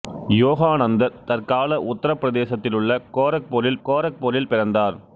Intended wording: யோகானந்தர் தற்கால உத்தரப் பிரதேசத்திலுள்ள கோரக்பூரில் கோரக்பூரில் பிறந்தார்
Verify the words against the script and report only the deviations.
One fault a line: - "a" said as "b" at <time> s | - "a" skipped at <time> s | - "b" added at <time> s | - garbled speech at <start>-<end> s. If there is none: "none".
none